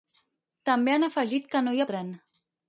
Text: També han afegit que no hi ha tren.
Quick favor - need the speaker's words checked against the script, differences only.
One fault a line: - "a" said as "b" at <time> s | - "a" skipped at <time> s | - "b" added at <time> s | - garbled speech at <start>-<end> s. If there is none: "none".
none